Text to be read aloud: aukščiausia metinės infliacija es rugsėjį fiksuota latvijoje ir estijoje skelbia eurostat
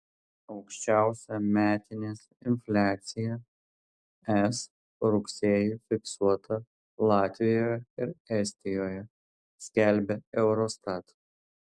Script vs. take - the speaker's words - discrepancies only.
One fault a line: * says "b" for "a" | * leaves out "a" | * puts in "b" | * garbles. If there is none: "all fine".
all fine